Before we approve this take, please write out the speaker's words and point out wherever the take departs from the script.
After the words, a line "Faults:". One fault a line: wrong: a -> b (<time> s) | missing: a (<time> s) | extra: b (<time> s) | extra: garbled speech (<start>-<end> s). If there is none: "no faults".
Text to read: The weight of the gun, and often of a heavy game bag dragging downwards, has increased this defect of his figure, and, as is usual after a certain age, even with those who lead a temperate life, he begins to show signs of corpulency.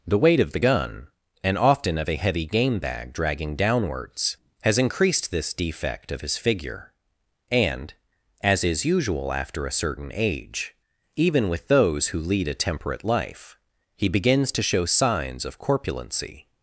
The weight of the gun, and often of a heavy game bag dragging downwards, has increased this defect of his figure, and, as is usual after a certain age, even with those who lead a temperate life, he begins to show signs of corpulency.
Faults:
no faults